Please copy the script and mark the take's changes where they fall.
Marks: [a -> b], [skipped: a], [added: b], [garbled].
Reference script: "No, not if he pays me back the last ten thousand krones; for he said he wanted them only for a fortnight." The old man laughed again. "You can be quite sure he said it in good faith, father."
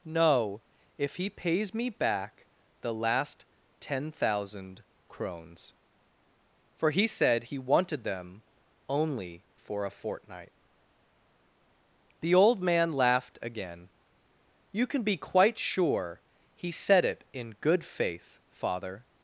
"No, [skipped: not] if he pays me back the last ten thousand krones; for he said he wanted them only for a fortnight." The old man laughed again. "You can be quite sure he said it in good faith, father."